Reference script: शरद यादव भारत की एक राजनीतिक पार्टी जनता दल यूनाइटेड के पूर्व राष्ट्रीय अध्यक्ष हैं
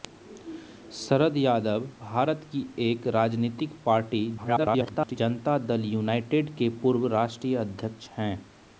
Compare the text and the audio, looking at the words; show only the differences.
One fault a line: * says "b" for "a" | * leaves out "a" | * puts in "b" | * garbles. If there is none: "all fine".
* garbles